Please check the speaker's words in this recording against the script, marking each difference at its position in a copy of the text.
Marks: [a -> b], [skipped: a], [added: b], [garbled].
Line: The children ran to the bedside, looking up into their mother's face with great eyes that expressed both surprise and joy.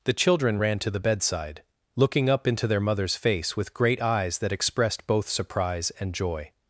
The children ran to the bedside, looking up into their mother's face with great eyes that expressed both surprise and joy.